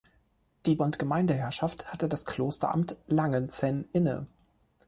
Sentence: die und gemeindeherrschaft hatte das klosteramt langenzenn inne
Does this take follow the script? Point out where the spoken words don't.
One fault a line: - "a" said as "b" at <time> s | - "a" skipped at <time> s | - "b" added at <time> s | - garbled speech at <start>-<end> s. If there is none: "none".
none